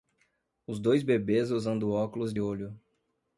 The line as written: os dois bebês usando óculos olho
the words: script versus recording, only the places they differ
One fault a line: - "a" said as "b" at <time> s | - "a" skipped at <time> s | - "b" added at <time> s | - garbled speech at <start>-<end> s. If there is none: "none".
none